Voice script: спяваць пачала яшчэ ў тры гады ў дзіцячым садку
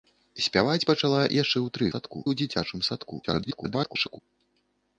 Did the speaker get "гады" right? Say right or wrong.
wrong